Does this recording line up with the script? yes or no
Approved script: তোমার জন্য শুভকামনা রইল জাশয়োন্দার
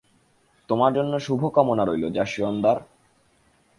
yes